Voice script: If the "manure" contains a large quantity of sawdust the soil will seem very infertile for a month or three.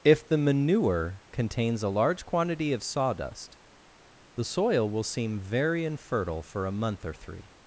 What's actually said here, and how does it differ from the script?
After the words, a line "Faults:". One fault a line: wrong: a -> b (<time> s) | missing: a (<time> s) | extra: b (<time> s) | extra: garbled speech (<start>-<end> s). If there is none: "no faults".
If the "manure" contains a large quantity of sawdust the soil will seem very infertile for a month or three.
Faults:
no faults